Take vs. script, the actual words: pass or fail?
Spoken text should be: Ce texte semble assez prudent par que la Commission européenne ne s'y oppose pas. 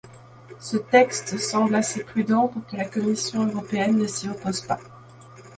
fail